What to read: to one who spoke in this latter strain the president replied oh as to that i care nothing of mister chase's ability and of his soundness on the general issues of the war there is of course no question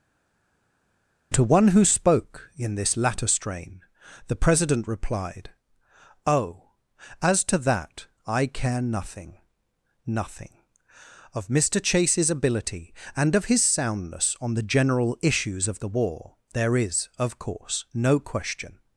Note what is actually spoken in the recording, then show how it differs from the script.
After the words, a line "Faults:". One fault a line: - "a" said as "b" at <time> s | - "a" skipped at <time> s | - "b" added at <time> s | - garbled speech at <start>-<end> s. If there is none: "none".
to one who spoke in this latter strain the president replied oh as to that i care nothing nothing of mister chase's ability and of his soundness on the general issues of the war there is of course no question
Faults:
- "nothing" added at 10.0 s